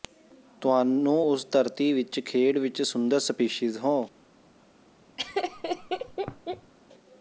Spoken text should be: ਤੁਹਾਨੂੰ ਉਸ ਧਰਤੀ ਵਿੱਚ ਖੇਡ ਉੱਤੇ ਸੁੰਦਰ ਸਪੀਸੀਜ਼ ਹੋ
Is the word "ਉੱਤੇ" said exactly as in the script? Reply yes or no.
no